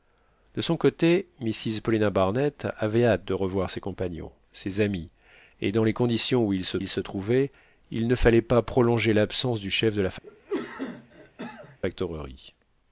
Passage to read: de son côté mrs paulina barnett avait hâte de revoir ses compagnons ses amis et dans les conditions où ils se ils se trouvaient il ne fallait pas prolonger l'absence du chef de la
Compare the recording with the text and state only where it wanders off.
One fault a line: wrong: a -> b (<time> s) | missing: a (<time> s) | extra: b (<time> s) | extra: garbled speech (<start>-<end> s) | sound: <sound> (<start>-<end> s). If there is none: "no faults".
sound: cough (10.2-11.8 s)